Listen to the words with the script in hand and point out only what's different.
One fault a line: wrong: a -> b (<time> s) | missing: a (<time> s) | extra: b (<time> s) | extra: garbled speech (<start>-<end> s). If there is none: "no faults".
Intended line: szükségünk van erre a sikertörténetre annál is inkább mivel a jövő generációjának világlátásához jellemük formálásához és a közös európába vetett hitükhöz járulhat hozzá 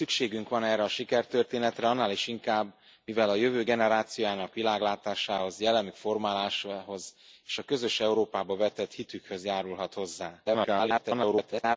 extra: garbled speech (10.4-11.8 s)